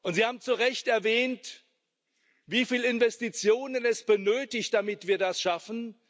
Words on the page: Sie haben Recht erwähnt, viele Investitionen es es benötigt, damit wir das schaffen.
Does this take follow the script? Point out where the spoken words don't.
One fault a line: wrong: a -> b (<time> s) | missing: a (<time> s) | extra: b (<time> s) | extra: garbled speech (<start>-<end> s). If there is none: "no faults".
extra: zu (0.4 s)
extra: wie (2.5 s)
missing: es (4.0 s)